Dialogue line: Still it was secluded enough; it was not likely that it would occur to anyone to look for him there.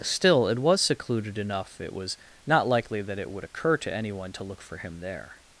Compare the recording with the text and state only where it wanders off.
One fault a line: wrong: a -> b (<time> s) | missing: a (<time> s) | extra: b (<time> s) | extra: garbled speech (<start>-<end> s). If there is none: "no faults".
no faults